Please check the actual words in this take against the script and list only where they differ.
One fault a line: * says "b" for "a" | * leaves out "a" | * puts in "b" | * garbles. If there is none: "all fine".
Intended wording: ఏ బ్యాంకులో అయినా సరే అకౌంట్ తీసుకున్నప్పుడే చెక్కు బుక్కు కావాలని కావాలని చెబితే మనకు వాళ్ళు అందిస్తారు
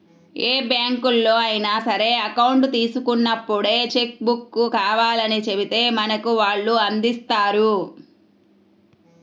* leaves out "కావాలని"